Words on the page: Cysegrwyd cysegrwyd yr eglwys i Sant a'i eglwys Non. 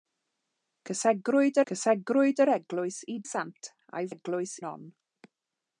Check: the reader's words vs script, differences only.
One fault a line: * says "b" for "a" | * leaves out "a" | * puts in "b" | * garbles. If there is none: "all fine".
all fine